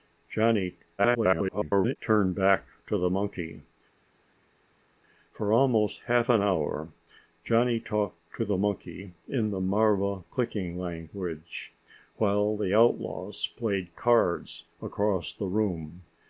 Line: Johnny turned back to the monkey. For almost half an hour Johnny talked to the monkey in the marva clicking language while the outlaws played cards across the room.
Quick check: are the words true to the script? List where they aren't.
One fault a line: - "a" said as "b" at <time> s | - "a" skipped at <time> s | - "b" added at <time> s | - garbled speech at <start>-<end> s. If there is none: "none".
- garbled speech at 1.0-2.0 s